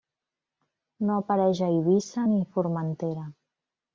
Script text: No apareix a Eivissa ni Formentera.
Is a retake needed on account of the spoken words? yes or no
no